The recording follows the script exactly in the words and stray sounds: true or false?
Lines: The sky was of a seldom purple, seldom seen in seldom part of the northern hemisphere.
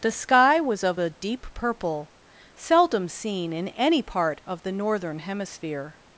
false